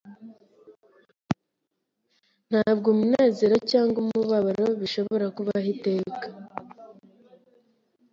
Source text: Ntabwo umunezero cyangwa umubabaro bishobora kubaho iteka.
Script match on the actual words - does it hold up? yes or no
yes